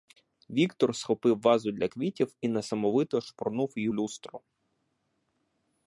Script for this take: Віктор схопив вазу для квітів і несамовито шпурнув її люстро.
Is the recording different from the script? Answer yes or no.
no